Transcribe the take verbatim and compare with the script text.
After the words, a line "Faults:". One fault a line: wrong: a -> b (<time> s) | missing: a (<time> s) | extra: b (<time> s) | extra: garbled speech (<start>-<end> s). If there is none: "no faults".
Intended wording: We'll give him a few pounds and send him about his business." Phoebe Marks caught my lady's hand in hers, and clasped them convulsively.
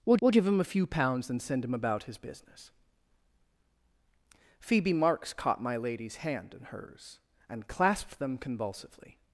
We'll we'll give him a few pounds and send him about his business." Phoebe Marks caught my lady's hand in hers, and clasped them convulsively.
Faults:
extra: we'll (0.2 s)